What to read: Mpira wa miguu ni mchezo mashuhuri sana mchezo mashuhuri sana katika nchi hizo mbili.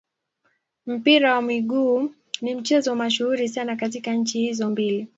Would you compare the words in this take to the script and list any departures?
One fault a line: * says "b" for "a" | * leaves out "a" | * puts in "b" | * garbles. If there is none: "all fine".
* leaves out "mchezo mashuhuri sana"